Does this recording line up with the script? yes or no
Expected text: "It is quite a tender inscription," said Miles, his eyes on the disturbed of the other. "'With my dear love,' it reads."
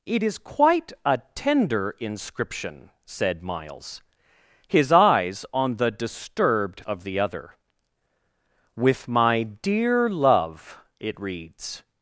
yes